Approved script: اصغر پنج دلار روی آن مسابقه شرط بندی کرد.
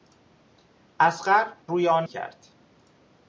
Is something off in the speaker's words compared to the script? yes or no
yes